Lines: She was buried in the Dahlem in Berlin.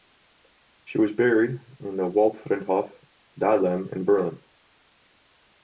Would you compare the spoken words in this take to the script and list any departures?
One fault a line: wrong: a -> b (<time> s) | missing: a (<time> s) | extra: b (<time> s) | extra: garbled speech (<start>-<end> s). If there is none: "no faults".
extra: Waldfriedhof (2.1 s)